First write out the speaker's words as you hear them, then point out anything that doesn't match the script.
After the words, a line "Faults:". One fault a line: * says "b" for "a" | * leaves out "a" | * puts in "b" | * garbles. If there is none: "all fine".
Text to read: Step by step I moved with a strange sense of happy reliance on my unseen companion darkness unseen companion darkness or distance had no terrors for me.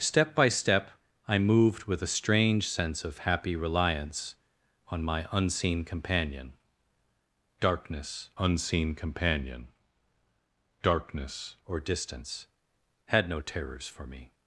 Step by step I moved with a strange sense of happy reliance on my unseen companion darkness unseen companion darkness or distance had no terrors for me.
Faults:
all fine